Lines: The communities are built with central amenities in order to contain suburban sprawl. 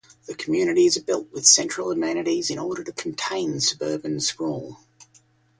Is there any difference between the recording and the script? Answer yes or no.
no